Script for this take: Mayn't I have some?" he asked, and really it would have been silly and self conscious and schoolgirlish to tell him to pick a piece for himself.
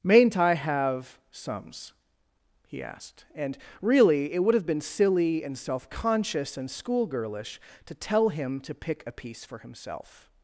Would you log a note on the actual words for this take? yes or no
yes